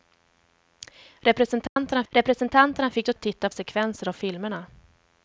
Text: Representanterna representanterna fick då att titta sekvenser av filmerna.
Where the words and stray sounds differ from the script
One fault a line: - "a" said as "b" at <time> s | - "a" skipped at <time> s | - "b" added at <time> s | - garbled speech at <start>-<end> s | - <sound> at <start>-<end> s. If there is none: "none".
- dropout at 1.7-1.8 s